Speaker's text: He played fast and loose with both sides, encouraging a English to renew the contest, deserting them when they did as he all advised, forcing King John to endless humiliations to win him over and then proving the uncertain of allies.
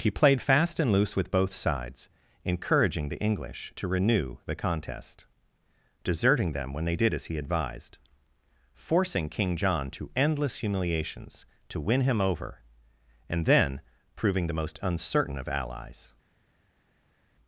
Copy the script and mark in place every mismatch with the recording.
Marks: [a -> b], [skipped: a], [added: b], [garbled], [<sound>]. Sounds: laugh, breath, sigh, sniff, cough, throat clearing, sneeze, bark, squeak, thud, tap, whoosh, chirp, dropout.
He played fast and loose with both sides, encouraging [a -> the] English to renew the contest, deserting them when they did as he [skipped: all] advised, forcing King John to endless humiliations to win him over and then proving the [added: most] uncertain of allies.